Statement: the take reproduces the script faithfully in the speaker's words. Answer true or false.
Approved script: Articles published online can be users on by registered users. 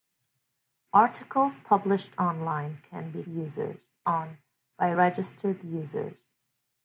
true